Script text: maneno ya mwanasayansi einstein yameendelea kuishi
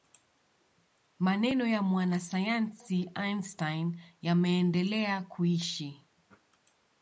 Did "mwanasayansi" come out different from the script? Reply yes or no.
no